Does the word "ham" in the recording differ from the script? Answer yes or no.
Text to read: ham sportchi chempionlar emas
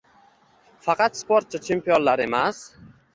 yes